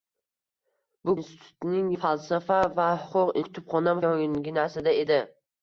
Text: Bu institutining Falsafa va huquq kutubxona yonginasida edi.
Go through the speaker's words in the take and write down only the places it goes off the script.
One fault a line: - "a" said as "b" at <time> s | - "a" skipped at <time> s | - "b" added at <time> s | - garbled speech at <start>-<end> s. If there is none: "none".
none